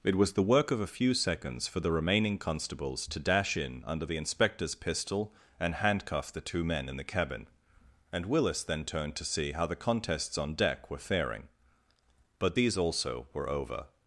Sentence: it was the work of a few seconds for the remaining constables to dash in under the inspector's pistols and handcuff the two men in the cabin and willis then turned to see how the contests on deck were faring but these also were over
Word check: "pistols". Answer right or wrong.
wrong